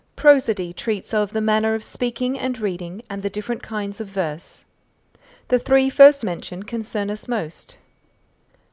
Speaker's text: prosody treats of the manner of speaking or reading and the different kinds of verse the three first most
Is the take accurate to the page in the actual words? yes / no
no